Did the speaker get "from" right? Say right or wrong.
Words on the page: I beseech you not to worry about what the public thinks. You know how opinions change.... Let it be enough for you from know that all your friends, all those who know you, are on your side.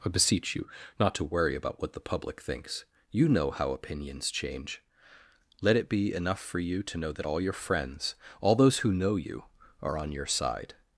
wrong